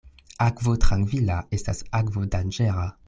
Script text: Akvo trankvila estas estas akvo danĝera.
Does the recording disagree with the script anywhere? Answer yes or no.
yes